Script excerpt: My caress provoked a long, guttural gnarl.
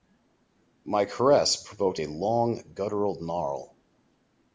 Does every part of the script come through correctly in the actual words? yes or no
yes